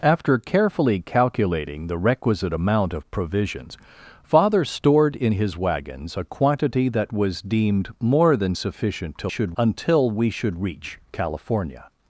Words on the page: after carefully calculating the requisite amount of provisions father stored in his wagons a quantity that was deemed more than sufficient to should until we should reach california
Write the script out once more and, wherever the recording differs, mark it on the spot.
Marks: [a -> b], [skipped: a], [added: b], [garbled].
after carefully calculating the requisite amount of provisions father stored in his wagons a quantity that was deemed more than sufficient to should until we should reach california